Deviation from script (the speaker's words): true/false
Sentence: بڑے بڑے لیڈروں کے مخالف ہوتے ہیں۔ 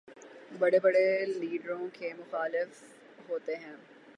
false